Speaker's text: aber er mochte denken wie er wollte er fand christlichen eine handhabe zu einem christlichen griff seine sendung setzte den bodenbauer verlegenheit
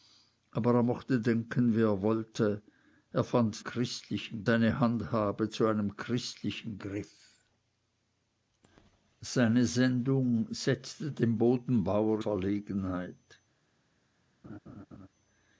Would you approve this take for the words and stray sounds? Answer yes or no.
no